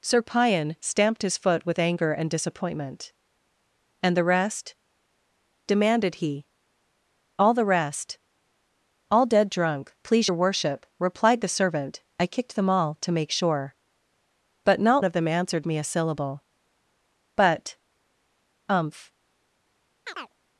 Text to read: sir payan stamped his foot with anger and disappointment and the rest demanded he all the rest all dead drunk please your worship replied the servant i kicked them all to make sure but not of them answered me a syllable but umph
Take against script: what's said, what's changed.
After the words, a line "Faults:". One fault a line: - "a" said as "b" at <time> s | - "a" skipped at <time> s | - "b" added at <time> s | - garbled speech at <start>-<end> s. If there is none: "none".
sir payan stamped his foot with anger and disappointment and the rest demanded he all the rest all dead drunk please your worship replied the servant i kicked them all to make sure but not of them answered me a syllable but umph
Faults:
none